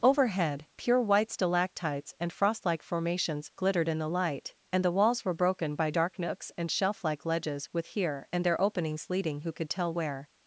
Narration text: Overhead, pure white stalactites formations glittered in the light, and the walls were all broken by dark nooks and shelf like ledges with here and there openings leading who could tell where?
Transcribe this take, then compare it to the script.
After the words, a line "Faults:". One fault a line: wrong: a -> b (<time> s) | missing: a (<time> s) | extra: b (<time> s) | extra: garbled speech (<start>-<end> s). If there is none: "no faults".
Overhead, pure white stalactites and frost like formations glittered in the light, and the walls were broken by dark nooks and shelf like ledges with here and there openings leading who could tell where?
Faults:
extra: and frost like (2.2 s)
missing: all (5.3 s)